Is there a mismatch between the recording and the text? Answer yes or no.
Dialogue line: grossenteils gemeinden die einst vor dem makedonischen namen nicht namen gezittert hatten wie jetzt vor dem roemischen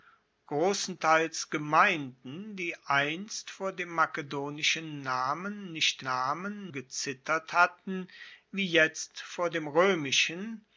no